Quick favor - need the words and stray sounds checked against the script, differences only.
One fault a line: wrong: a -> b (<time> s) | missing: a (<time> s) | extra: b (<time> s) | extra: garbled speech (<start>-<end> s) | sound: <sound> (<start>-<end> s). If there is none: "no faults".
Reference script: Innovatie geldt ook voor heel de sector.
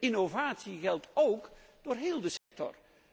sound: dropout (2.4-2.5 s)